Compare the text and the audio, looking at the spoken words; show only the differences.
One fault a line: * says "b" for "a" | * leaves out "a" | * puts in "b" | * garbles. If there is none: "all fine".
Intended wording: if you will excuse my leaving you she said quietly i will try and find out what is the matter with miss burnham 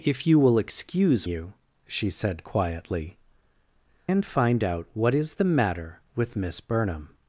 * leaves out "my leaving"
* leaves out "i will try"